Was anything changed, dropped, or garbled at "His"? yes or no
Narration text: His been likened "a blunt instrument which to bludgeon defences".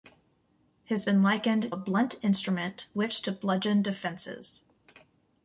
no